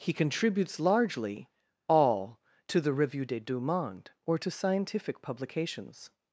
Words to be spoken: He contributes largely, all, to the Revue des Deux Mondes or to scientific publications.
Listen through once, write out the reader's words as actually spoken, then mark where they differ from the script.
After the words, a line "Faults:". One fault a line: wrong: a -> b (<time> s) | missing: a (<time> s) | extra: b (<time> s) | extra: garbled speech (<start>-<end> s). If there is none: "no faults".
He contributes largely, all, to the Revue des Deux Mondes or to scientific publications.
Faults:
no faults